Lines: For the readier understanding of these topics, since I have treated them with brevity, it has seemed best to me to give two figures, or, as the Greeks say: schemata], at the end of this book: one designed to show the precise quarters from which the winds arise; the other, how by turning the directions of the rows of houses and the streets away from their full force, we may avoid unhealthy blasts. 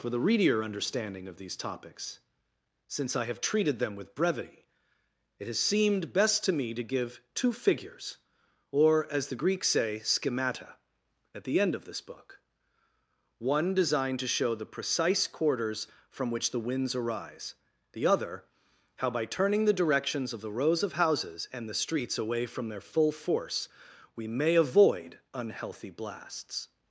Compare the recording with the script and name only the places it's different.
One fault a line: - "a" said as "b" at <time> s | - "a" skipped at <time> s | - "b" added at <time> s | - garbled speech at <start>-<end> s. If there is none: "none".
none